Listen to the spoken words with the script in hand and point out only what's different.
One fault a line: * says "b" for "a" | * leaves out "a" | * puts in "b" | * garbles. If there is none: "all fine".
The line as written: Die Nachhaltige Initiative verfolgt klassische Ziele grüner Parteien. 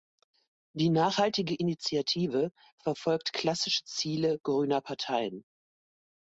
all fine